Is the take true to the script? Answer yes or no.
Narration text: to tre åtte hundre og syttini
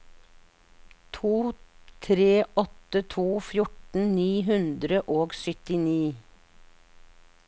no